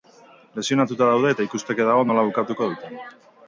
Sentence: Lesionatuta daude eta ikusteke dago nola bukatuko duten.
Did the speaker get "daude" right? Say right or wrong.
right